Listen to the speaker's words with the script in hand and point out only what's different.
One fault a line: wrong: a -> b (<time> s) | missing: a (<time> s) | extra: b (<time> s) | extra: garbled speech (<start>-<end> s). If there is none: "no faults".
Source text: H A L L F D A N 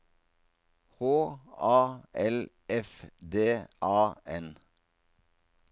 missing: L (2.5 s)